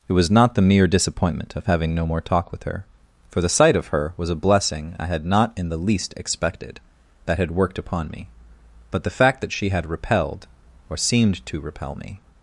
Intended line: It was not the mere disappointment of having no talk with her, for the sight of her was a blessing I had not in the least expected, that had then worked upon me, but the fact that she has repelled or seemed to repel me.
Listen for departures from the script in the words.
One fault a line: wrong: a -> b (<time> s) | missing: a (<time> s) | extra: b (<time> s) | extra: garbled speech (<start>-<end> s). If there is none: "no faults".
extra: more (2.0 s)
missing: then (7.5 s)
wrong: has -> had (9.7 s)